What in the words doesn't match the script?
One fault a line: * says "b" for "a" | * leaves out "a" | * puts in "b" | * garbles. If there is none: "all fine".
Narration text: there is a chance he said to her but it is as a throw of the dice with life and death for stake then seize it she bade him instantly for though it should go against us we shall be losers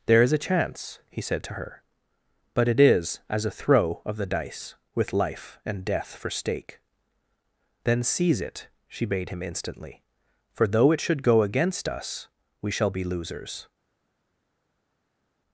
all fine